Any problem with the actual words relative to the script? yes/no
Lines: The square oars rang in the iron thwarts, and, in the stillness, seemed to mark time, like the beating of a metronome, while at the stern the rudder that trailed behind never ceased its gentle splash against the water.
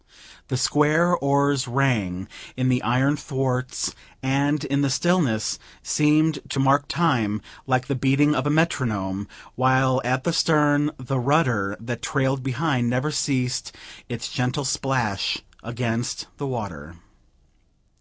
no